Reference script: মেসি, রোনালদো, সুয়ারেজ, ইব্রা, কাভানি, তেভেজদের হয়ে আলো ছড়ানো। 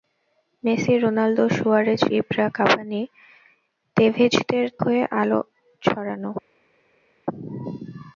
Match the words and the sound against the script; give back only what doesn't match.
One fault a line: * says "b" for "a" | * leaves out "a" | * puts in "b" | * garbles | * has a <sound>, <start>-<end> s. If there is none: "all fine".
all fine